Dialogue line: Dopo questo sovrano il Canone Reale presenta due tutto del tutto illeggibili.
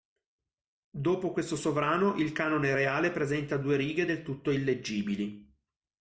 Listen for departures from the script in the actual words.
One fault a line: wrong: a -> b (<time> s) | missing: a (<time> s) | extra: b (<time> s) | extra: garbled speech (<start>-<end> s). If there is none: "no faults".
wrong: tutto -> righe (3.8 s)